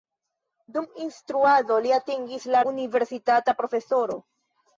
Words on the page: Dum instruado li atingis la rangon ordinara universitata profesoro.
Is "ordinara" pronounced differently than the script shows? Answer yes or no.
yes